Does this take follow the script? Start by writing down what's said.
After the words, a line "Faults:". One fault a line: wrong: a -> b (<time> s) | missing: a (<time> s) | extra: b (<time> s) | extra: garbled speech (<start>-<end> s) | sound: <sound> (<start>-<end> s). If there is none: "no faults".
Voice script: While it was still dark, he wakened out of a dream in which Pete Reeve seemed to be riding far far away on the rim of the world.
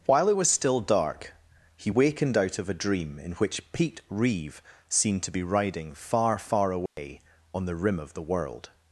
While it was still dark, he wakened out of a dream in which Pete Reeve seemed to be riding far far away on the rim of the world.
Faults:
sound: dropout (6.9-7.0 s)